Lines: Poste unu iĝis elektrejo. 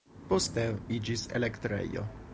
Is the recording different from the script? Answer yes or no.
yes